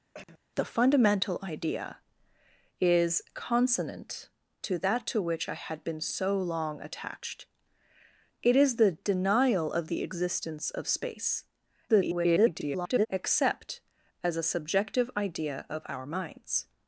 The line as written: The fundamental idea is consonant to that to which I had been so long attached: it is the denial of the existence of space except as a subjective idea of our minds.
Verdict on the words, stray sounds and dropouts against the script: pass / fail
fail